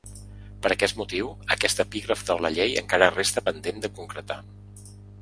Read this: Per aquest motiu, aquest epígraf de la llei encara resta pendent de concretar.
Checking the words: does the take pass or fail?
pass